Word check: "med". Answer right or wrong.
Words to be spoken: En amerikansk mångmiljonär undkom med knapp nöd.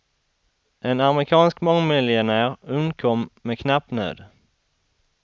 right